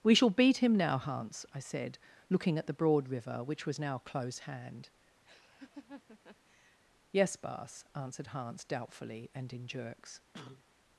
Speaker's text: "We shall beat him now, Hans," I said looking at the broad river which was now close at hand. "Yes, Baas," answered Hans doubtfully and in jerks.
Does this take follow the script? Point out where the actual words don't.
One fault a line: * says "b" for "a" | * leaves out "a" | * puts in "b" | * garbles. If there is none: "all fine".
* leaves out "at"